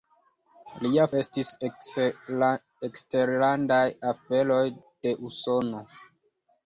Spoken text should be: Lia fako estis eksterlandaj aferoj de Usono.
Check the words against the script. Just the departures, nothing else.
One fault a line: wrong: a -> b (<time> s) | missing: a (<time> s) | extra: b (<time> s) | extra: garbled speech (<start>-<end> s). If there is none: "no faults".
missing: fako (1.0 s)